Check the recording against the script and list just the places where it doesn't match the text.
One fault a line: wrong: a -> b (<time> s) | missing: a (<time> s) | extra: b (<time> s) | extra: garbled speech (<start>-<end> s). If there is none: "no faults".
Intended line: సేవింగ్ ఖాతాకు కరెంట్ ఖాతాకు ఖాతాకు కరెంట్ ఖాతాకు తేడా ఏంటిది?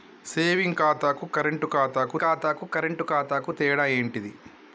no faults